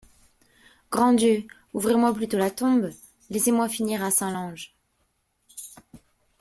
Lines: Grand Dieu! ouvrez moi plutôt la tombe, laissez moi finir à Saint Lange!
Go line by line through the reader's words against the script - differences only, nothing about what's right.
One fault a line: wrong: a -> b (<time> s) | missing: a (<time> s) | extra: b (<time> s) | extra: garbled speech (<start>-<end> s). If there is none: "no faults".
no faults